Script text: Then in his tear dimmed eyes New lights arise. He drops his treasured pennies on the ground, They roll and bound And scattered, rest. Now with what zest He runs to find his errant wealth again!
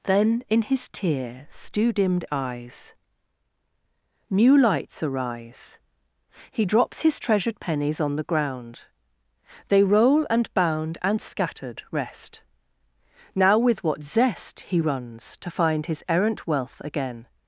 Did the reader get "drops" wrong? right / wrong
right